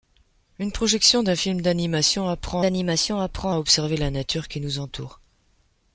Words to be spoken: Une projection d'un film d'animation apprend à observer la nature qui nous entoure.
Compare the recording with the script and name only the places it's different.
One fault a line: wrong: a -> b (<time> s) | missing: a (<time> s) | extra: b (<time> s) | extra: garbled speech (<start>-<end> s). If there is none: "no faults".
extra: d'animation apprend (2.6 s)